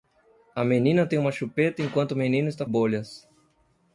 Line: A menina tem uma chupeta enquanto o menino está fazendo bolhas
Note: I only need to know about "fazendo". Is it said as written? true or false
false